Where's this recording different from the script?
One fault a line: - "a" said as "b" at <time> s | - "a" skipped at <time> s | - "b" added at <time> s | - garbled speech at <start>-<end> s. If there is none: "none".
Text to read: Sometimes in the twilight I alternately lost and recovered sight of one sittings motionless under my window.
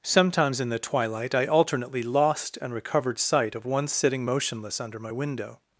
- "sittings" said as "sitting" at 3.9 s